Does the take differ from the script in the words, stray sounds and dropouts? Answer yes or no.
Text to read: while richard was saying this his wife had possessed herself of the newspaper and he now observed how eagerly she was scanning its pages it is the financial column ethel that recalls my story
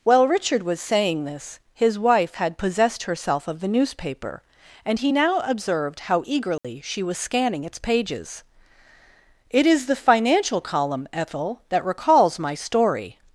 yes